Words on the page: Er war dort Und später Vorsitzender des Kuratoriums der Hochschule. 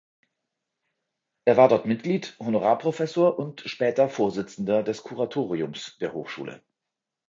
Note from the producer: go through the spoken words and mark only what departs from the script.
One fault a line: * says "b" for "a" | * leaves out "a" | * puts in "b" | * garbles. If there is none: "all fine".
* puts in "Mitglied Honorarprofessor"